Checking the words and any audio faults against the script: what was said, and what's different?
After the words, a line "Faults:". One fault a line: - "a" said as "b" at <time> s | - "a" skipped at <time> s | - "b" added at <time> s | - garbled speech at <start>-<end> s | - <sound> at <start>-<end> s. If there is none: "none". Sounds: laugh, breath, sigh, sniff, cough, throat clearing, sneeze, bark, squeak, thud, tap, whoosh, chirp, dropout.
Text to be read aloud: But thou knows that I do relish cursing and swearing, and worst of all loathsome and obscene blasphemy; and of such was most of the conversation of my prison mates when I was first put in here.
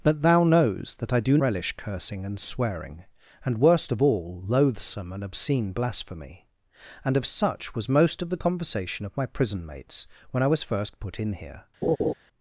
But thou knows that I do relish cursing and swearing, and worst of all loathsome and obscene blasphemy; and of such was most of the conversation of my prison mates when I was first put in here.
Faults:
- laugh at 11.8-12.1 s